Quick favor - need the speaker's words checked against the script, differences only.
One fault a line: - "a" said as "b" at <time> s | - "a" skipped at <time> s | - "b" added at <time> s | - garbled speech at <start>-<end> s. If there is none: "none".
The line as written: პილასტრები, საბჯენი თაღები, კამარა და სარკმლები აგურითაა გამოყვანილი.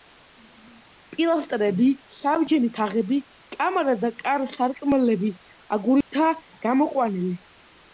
- "კარ" added at 4.2 s